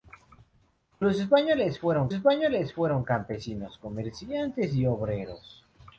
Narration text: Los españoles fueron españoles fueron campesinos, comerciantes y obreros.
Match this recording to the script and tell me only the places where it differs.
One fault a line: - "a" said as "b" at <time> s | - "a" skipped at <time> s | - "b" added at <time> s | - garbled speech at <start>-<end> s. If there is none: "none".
none